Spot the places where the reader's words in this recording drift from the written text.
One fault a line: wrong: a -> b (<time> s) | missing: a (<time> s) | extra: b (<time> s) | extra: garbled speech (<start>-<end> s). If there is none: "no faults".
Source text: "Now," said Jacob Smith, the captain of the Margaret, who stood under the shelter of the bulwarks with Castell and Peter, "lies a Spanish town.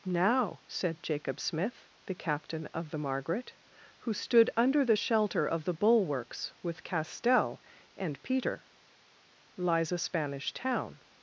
no faults